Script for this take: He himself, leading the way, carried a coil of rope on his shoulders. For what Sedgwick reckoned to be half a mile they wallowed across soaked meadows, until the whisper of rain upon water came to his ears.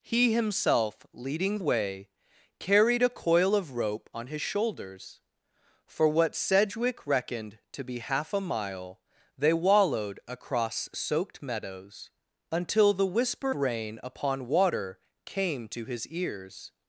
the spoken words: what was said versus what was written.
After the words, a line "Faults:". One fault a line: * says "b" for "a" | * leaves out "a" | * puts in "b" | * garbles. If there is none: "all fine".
He himself, leading way, carried a coil of rope on his shoulders. For what Sedgwick reckoned to be half a mile they wallowed across soaked meadows, until the whisper rain upon water came to his ears.
Faults:
* leaves out "the"
* leaves out "of"